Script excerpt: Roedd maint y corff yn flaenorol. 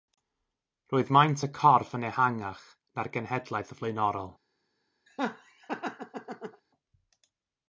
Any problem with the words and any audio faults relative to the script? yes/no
yes